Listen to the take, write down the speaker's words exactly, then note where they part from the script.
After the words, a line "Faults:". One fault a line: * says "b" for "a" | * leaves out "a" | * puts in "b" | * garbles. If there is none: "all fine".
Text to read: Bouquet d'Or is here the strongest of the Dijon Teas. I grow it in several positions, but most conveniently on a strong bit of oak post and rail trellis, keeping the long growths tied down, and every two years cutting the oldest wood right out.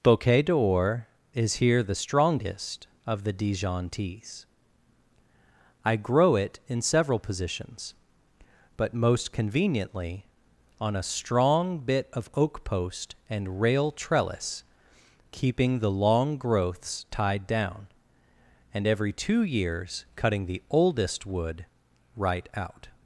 Bouquet d'Or is here the strongest of the Dijon Teas. I grow it in several positions, but most conveniently on a strong bit of oak post and rail trellis, keeping the long growths tied down, and every two years cutting the oldest wood right out.
Faults:
all fine